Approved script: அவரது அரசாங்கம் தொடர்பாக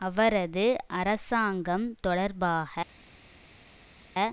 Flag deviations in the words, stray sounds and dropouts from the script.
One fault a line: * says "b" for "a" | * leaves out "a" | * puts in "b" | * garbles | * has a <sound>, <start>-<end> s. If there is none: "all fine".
all fine